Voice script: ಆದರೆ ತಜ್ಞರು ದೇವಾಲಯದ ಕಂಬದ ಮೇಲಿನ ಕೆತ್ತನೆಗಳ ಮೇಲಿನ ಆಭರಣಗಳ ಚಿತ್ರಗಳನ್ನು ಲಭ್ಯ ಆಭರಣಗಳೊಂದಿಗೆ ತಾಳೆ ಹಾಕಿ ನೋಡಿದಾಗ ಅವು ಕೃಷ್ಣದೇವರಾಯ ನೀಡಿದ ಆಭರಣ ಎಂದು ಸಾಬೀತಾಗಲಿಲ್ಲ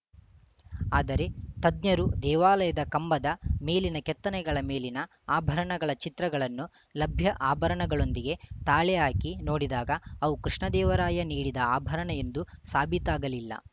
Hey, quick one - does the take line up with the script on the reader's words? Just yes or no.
yes